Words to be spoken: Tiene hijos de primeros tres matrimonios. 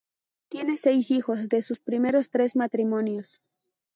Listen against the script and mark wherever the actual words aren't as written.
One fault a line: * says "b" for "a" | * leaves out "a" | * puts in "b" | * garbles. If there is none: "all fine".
* puts in "seis"
* puts in "sus"